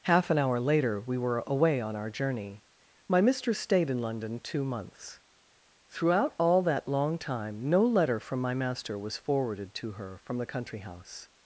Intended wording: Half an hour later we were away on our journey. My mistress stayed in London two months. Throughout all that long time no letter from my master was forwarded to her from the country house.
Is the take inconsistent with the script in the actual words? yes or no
no